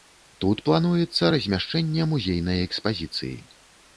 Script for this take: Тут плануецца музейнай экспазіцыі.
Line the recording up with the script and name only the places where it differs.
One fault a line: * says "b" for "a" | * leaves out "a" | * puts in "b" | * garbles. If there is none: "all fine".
* puts in "размяшчэнне"